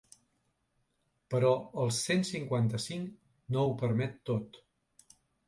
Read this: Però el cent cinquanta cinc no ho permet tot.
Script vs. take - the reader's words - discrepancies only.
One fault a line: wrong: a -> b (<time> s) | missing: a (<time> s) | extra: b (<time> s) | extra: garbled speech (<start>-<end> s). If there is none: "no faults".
no faults